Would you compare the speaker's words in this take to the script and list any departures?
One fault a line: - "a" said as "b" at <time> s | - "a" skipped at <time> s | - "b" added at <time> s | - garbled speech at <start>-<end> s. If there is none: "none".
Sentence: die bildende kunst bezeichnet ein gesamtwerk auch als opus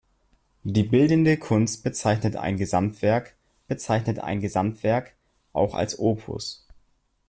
- "bezeichnet ein gesamtwerk" added at 3.7 s